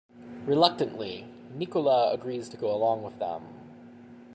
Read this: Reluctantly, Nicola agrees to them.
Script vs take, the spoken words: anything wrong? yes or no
yes